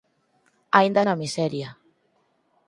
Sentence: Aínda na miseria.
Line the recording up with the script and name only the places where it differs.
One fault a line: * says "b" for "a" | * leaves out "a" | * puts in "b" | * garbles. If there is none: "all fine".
all fine